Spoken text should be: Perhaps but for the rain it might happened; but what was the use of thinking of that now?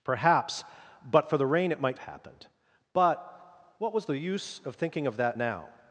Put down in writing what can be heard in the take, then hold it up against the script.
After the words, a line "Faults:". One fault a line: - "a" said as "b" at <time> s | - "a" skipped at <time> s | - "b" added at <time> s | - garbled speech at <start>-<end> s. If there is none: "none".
Perhaps but for the rain it might happened; but what was the use of thinking of that now?
Faults:
none